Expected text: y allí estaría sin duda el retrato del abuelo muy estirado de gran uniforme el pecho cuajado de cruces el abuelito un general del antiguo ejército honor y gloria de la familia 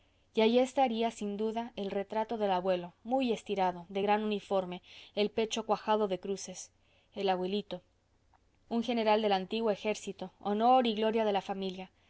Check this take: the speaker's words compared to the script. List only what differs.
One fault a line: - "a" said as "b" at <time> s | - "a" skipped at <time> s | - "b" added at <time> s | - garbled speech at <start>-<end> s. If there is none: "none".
none